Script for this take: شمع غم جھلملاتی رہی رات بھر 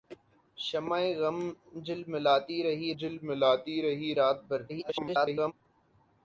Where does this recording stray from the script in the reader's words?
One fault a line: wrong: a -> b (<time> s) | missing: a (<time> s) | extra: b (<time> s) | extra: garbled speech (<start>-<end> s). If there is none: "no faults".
extra: جھلملاتی رہی (3.0 s)
extra: garbled speech (4.7-5.5 s)